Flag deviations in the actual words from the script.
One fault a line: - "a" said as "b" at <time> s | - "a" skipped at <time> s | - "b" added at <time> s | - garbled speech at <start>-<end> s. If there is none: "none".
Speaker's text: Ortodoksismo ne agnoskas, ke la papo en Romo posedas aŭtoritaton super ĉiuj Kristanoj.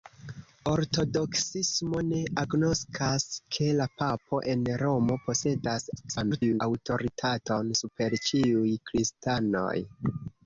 - garbled speech at 6.0-6.6 s